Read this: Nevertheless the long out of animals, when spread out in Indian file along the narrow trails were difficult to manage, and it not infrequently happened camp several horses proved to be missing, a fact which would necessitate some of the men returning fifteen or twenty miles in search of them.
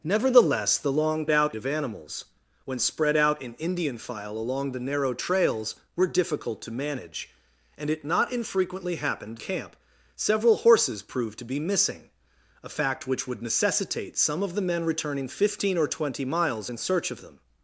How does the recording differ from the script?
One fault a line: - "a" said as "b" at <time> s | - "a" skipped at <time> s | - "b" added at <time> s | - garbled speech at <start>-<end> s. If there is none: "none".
none